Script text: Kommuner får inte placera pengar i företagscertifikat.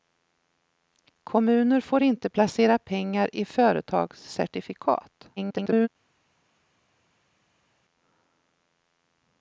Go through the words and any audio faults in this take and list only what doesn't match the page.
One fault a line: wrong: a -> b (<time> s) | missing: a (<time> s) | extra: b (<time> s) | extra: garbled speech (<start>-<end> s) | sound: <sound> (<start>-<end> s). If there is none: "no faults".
extra: garbled speech (5.4-5.9 s)